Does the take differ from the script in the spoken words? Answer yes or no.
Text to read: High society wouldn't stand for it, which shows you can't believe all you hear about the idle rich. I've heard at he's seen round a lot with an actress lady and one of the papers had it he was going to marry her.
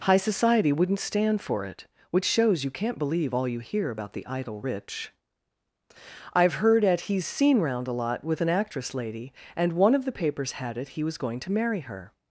no